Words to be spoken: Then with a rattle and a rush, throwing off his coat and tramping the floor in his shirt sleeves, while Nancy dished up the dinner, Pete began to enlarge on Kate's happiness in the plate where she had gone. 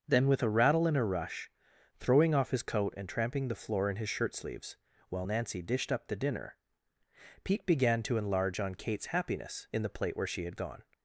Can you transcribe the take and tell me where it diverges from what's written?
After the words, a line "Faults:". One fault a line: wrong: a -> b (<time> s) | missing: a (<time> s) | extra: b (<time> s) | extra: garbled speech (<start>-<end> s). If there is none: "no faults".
Then with a rattle and a rush, throwing off his coat and tramping the floor in his shirt sleeves, while Nancy dished up the dinner, Pete began to enlarge on Kate's happiness in the plate where she had gone.
Faults:
no faults